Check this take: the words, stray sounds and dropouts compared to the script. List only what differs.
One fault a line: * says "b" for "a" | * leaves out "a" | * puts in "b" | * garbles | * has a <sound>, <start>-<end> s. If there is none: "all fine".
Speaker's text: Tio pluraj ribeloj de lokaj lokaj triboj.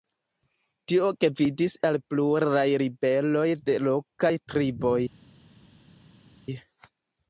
* puts in "gvidis al"
* leaves out "lokaj"